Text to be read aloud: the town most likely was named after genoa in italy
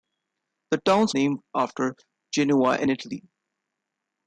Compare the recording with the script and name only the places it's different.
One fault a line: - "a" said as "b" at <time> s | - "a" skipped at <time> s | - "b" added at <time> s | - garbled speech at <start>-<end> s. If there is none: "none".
- "most likely was" skipped at 1.1 s